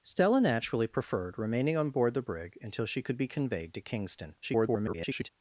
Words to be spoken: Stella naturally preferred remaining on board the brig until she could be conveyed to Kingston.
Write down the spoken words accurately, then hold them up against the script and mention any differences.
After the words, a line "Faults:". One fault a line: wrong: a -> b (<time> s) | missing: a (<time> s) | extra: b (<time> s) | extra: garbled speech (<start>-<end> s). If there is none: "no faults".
Stella naturally preferred remaining on board the brig until she could be conveyed to Kingston. [garbled]
Faults:
extra: garbled speech (4.4-5.3 s)